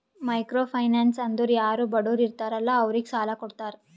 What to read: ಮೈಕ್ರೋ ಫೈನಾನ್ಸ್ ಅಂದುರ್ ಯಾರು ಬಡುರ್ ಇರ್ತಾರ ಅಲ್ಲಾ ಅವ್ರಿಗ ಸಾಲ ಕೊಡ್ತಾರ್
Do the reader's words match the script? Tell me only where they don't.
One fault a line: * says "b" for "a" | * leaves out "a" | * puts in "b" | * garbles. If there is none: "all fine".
all fine